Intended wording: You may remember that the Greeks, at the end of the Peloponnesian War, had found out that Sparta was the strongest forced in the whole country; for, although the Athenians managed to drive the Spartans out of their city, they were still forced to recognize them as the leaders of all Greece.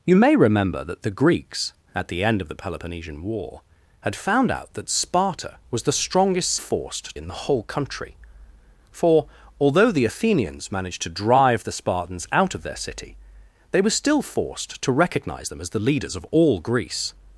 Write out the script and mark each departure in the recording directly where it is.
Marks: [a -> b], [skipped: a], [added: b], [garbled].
You may remember that the Greeks, at the end of the Peloponnesian War, had found out that Sparta was the strongest forced in the whole country; for, although the Athenians managed to drive the Spartans out of their city, they were still forced to recognize them as the leaders of all Greece.